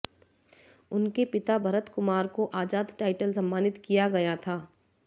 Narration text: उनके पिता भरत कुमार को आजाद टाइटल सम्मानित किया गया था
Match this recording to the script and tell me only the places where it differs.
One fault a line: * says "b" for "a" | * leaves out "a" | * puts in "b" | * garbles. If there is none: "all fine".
all fine